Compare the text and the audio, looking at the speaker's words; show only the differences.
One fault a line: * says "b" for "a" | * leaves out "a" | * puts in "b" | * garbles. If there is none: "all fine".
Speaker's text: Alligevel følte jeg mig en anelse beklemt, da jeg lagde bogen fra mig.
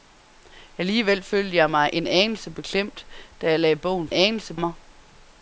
* says "anelse" for "fra"